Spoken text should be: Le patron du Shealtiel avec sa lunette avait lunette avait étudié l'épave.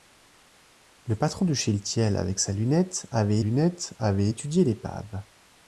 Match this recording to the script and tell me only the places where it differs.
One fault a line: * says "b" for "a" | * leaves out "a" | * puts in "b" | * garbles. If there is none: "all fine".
all fine